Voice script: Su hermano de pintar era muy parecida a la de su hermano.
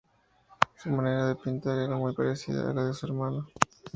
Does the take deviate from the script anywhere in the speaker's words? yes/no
yes